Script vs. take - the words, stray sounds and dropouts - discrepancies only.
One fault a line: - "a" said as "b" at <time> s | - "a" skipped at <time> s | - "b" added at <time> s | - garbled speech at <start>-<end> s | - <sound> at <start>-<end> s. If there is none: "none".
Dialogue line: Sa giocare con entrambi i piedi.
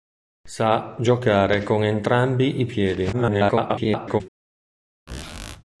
- garbled speech at 3.1-4.2 s
- squeak at 5.1-5.6 s